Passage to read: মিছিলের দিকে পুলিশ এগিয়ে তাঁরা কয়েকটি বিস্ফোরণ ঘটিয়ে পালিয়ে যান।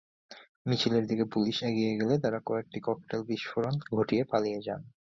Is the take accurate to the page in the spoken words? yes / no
no